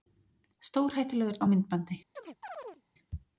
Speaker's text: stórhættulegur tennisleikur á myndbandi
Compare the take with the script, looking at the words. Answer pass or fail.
fail